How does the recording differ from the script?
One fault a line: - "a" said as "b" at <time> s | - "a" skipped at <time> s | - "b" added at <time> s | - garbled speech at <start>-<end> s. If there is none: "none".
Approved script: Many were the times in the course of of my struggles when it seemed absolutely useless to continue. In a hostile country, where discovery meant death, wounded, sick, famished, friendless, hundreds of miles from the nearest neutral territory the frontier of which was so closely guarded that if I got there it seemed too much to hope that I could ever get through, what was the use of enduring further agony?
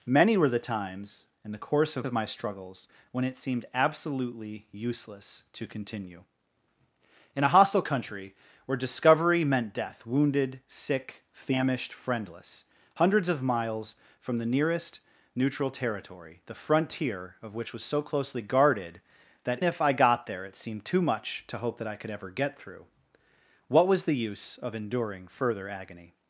none